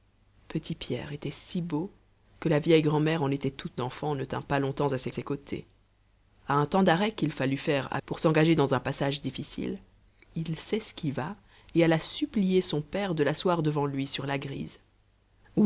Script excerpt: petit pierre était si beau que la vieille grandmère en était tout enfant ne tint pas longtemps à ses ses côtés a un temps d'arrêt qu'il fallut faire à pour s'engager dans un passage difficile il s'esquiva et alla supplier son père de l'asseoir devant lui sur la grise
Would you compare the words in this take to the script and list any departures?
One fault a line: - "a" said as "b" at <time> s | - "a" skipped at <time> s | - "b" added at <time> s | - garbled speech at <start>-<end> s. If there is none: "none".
none